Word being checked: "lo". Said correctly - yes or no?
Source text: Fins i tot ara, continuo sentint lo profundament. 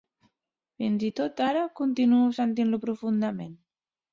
yes